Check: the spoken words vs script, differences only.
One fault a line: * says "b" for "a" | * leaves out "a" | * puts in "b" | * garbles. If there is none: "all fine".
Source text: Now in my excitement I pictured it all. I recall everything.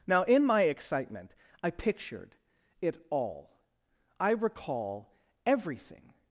all fine